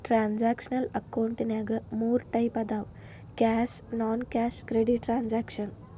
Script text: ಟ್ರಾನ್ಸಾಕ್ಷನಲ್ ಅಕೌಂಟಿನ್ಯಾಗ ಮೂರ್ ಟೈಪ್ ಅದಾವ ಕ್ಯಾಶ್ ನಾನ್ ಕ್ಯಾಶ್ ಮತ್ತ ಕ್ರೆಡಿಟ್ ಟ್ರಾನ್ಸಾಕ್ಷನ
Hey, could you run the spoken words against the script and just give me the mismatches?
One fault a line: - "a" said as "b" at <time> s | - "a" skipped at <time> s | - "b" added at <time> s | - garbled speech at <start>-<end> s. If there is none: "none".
- "ಮತ್ತ" skipped at 4.6 s